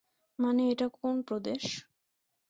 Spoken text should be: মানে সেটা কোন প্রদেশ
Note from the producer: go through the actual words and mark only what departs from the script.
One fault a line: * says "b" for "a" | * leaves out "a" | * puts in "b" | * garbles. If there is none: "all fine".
* says "এটা" for "সেটা"